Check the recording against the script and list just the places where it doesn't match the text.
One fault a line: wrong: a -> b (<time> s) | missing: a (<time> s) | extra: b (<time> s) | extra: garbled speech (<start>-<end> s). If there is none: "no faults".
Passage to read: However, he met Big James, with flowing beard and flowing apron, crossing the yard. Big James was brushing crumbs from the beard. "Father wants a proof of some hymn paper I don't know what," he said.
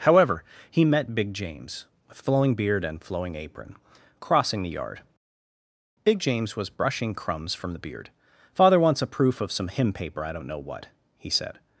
no faults